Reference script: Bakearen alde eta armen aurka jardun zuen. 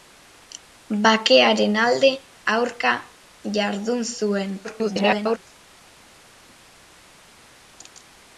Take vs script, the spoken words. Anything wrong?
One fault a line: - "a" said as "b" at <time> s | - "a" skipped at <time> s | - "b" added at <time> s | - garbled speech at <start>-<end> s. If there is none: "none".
- "eta armen" skipped at 2.1 s
- garbled speech at 4.6-5.4 s